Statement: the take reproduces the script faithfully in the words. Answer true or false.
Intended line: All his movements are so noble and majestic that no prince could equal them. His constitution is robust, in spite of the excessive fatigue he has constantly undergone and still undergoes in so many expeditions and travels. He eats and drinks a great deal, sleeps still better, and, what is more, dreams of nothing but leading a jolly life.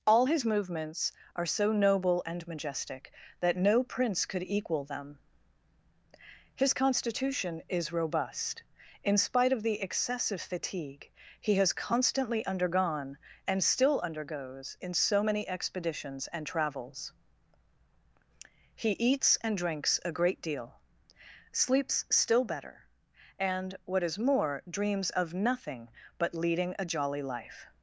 true